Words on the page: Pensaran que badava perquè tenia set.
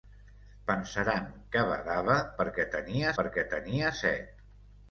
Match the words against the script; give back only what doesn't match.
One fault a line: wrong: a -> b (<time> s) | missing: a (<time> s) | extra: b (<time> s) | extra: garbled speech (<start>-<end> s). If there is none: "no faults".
extra: perquè tenia (3.2 s)